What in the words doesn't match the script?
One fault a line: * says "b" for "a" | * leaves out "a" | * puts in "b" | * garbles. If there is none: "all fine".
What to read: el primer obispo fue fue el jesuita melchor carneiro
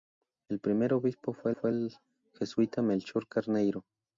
all fine